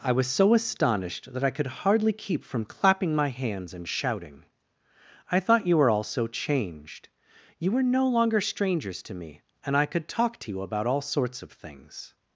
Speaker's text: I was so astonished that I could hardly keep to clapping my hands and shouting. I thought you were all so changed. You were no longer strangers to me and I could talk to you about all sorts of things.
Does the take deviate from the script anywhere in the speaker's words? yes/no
yes